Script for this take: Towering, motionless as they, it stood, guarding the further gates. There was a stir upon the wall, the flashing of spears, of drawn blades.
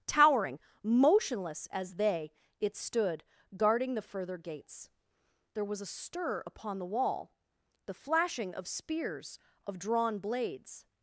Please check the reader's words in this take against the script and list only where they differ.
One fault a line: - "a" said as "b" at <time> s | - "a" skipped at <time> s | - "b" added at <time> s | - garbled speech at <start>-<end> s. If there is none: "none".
none